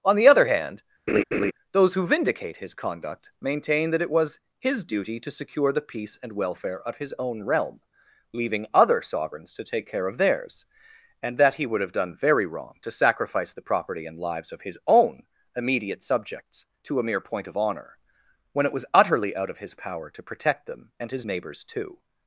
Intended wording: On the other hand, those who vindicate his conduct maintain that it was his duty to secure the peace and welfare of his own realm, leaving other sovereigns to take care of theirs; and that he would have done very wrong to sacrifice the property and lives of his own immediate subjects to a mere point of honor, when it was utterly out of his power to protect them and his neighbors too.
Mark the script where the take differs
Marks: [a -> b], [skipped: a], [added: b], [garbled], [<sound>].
On the other hand, [laugh] those who vindicate his conduct maintain that it was his duty to secure the peace and welfare of his own realm, leaving other sovereigns to take care of theirs; and that he would have done very wrong to sacrifice the property and lives of his own immediate subjects to a mere point of honor, when it was utterly out of his power to protect them and his neighbors too.